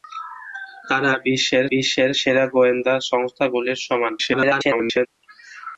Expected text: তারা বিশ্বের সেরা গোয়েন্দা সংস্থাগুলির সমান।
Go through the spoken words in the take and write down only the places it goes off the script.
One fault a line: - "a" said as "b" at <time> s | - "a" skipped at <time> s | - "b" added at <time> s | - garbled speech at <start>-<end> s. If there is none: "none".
- "বিশ্বের" added at 1.7 s
- garbled speech at 4.2-5.1 s